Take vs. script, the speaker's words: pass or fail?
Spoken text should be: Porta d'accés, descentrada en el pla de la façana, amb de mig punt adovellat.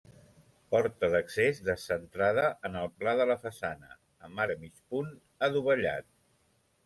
pass